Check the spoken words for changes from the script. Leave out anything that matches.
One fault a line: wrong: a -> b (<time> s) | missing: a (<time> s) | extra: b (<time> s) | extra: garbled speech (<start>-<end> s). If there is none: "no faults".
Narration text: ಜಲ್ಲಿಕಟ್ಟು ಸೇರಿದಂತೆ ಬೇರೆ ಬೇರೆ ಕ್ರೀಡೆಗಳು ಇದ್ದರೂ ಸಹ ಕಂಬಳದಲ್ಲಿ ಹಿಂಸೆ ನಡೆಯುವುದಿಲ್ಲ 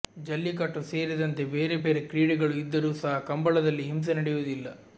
no faults